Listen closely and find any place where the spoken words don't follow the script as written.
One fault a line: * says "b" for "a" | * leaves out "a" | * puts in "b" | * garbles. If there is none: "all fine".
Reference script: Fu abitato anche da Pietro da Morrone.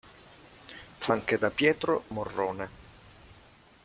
* leaves out "abitato"
* leaves out "da"